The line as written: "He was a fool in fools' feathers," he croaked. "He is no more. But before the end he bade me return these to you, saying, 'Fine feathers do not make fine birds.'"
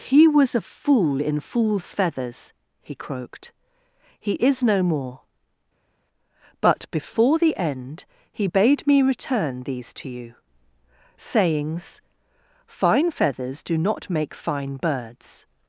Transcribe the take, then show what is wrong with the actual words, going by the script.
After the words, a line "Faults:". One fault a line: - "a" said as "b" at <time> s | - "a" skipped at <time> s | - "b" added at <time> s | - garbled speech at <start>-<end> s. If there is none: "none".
"He was a fool in fools' feathers," he croaked. "He is no more. But before the end he bade me return these to you, sayings, 'Fine feathers do not make fine birds.'"
Faults:
- "saying" said as "sayings" at 11.2 s